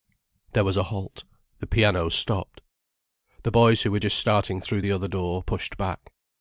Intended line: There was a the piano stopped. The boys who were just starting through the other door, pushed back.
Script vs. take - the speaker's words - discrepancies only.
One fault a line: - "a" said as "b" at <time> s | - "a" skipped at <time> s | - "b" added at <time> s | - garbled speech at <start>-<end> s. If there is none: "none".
- "halt" added at 0.8 s